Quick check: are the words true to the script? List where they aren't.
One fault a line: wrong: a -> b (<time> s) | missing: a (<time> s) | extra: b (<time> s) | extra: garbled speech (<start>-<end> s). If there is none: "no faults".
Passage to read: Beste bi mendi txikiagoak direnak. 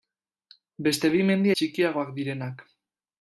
no faults